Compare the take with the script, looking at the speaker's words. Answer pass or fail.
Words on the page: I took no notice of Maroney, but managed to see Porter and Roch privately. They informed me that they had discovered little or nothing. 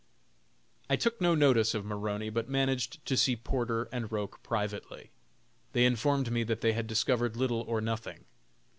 pass